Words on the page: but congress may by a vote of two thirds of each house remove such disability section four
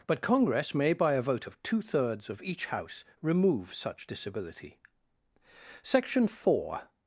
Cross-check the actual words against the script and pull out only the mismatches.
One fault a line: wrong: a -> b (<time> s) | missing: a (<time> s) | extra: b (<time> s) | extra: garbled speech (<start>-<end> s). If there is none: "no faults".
no faults